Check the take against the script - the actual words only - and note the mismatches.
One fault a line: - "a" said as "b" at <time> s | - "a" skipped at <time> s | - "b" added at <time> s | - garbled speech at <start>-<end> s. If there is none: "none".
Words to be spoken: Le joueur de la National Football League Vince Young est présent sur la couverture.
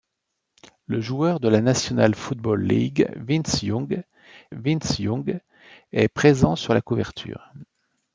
- "Vince Young" added at 4.5 s